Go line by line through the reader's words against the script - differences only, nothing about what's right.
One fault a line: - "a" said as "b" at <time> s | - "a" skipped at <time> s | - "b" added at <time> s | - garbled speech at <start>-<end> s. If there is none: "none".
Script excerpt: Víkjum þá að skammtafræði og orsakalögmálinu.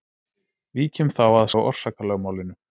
- "skammtafræði" skipped at 1.5 s